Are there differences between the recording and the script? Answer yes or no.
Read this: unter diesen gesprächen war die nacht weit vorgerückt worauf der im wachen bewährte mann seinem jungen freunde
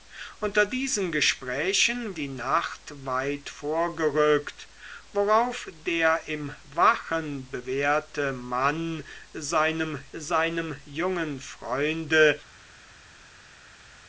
yes